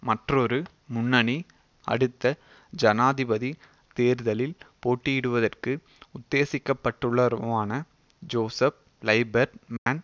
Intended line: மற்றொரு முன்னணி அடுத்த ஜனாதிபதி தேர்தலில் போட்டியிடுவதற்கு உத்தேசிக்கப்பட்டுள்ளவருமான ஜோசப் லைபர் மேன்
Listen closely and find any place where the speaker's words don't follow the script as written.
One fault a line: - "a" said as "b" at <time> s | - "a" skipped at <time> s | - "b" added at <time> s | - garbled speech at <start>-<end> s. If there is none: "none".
none